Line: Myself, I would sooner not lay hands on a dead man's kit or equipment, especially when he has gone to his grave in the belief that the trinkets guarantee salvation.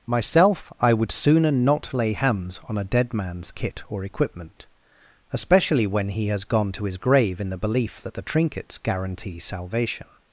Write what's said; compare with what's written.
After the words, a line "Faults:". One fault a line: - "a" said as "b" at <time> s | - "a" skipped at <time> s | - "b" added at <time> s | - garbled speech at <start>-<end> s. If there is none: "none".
Myself, I would sooner not lay hands on a dead man's kit or equipment, especially when he has gone to his grave in the belief that the trinkets guarantee salvation.
Faults:
none